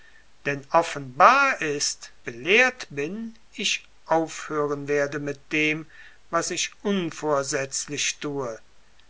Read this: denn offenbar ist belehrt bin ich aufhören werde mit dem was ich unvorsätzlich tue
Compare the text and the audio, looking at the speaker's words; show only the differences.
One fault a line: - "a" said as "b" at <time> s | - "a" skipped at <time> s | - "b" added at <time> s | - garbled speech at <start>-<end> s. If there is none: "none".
none